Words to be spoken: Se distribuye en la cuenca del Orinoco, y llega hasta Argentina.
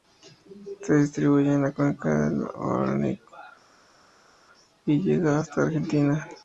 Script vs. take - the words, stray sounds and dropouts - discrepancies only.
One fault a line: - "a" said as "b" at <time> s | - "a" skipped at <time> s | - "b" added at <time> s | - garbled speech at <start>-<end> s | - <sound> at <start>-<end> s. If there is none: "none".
none